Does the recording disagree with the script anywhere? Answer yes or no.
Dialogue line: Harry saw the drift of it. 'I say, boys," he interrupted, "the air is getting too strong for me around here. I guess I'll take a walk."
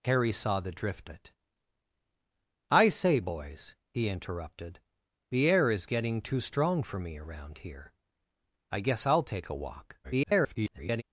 yes